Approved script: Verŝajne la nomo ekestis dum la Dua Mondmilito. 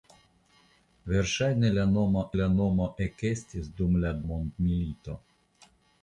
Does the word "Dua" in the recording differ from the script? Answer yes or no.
yes